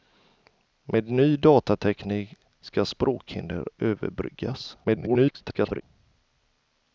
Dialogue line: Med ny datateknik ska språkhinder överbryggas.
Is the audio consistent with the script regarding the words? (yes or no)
no